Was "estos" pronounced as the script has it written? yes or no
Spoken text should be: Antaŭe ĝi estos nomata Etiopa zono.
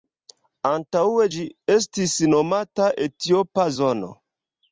no